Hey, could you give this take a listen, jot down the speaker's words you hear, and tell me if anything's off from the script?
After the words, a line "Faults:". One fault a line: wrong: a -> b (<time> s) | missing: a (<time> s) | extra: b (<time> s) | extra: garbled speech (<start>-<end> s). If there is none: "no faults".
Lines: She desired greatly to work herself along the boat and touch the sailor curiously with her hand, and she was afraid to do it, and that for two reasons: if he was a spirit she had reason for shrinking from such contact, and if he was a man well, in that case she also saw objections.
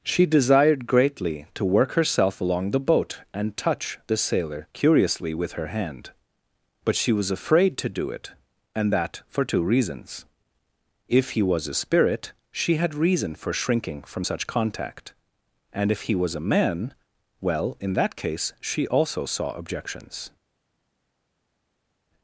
She desired greatly to work herself along the boat and touch the sailor curiously with her hand, but she was afraid to do it, and that for two reasons: if he was a spirit she had reason for shrinking from such contact, and if he was a man well, in that case she also saw objections.
Faults:
wrong: and -> but (6.8 s)